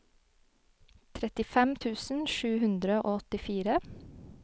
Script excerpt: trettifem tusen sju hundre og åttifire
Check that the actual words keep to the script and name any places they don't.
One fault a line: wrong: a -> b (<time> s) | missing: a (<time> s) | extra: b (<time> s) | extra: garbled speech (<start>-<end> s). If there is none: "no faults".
no faults